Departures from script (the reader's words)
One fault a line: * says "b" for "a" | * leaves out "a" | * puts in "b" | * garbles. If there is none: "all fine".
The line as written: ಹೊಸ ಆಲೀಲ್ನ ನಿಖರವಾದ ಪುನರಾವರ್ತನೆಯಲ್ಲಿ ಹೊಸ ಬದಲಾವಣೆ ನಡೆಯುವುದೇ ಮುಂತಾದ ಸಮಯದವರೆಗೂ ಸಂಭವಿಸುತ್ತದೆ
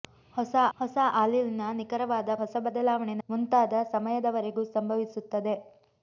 * puts in "ಹೊಸ"
* leaves out "ಪುನರಾವರ್ತನೆಯಲ್ಲಿ"
* leaves out "ನಡೆಯುವುದೇ"